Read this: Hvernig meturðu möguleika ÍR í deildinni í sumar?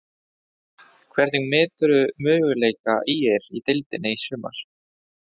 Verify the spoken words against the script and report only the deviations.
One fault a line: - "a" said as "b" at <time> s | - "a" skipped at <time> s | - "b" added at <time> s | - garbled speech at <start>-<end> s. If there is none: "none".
none